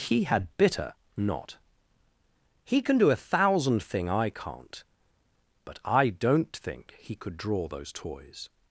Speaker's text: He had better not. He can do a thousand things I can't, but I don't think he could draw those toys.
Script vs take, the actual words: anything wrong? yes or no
yes